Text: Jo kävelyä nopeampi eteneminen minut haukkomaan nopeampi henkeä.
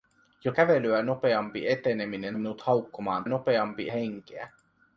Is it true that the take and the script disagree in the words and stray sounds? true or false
false